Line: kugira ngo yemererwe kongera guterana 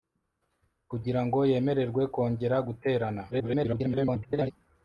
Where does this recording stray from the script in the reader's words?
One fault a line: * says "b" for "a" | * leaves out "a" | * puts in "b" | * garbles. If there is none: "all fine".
* garbles